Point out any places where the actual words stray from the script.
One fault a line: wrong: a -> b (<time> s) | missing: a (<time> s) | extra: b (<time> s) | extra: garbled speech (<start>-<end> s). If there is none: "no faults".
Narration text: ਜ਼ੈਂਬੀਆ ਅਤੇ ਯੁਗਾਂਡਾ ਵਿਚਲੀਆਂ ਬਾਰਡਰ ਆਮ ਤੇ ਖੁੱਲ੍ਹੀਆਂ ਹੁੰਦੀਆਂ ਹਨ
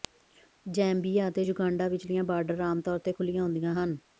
extra: ਤੌਰ (2.8 s)